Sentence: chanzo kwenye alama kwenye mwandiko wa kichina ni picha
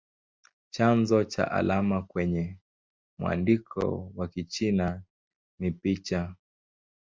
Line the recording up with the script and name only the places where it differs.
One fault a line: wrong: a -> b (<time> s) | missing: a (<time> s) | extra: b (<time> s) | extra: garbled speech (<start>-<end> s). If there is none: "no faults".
wrong: kwenye -> cha (1.2 s)